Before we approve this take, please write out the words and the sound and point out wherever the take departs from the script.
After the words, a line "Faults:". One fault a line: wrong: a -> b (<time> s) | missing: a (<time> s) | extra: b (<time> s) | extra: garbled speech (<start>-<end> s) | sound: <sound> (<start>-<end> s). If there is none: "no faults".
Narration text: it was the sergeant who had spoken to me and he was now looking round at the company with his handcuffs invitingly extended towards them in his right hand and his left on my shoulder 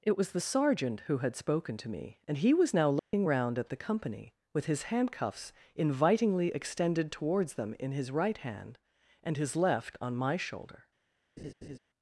it was the sergeant who had spoken to me and he was now looking round at the company with his handcuffs invitingly extended towards them in his right hand and his left on my shoulder
Faults:
sound: dropout (3.0-3.1 s)
sound: laugh (11.4-11.8 s)